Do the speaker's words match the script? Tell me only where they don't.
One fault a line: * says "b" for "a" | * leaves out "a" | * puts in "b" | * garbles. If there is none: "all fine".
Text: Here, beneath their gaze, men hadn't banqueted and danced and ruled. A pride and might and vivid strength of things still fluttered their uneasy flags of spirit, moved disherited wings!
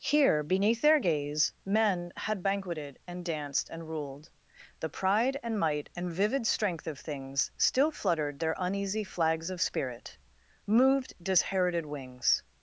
* says "had" for "hadn't"
* says "The" for "A"